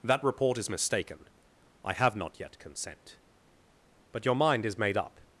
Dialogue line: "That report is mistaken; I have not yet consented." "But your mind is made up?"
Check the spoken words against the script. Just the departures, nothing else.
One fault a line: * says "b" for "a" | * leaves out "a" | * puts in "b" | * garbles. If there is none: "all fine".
* says "consent" for "consented"